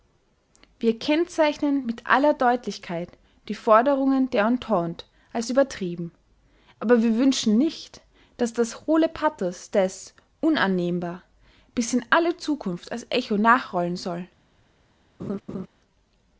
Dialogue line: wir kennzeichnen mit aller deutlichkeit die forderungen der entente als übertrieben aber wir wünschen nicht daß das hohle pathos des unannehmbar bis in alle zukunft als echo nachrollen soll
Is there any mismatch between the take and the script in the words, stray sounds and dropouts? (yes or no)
yes